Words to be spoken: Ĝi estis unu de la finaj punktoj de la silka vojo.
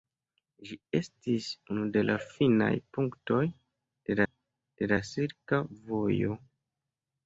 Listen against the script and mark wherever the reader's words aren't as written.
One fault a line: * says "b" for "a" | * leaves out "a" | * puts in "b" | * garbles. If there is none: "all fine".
* puts in "de"